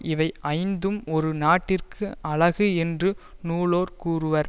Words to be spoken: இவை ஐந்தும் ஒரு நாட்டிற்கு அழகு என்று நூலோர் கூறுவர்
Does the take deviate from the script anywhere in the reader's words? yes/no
no